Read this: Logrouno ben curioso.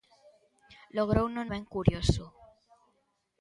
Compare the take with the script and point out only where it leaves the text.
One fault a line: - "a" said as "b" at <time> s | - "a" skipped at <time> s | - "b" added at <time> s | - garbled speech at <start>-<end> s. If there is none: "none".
none